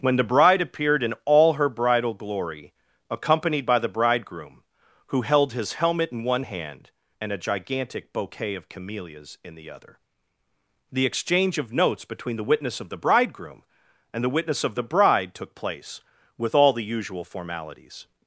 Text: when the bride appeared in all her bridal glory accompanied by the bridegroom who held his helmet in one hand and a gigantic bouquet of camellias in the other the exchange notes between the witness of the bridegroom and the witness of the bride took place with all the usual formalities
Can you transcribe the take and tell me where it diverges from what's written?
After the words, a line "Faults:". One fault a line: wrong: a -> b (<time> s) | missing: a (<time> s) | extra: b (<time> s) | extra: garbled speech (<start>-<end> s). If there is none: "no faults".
when the bride appeared in all her bridal glory accompanied by the bridegroom who held his helmet in one hand and a gigantic bouquet of camellias in the other the exchange of notes between the witness of the bridegroom and the witness of the bride took place with all the usual formalities
Faults:
extra: of (11.6 s)